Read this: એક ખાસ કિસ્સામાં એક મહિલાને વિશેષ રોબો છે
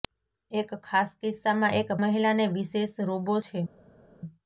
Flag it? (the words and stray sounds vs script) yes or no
no